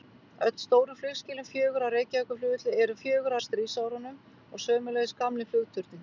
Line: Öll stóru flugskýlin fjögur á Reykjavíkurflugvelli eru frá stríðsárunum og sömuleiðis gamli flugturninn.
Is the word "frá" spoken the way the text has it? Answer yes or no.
no